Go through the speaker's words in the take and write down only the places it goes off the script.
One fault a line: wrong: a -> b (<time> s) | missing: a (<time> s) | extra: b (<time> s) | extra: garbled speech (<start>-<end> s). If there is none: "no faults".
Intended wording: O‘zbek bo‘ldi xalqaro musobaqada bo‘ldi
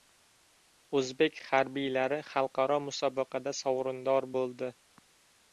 wrong: bo‘ldi -> harbiylari (1.5 s)
extra: sovrindor (3.6 s)